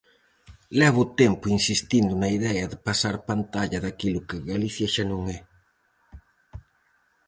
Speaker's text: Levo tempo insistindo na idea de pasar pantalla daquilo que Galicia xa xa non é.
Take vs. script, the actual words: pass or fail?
fail